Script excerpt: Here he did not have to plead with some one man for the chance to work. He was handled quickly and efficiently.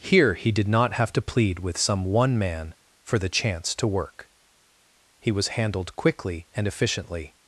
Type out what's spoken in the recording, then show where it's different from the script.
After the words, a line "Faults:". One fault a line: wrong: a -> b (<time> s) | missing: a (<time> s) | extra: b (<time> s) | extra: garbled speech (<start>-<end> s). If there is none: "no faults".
Here he did not have to plead with some one man for the chance to work. He was handled quickly and efficiently.
Faults:
no faults